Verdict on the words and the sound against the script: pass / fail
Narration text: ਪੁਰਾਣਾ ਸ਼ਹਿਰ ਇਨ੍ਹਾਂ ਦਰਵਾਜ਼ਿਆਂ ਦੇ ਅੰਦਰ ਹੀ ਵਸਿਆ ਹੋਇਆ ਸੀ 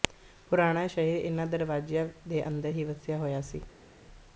pass